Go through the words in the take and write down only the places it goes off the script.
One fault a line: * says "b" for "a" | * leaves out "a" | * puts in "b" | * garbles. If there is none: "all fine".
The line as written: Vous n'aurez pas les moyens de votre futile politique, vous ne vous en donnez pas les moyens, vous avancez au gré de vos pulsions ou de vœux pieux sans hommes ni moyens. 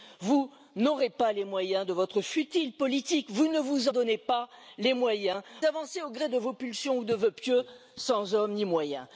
* leaves out "en"
* leaves out "vous"